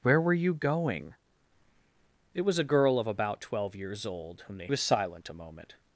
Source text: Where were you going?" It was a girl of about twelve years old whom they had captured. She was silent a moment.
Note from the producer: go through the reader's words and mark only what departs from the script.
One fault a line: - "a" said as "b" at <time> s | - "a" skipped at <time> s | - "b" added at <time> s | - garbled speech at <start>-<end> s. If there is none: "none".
- "had captured She" skipped at 4.7 s